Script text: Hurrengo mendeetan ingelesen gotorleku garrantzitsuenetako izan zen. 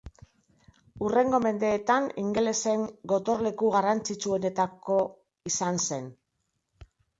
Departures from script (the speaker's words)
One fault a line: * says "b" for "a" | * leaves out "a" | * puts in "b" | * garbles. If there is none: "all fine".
all fine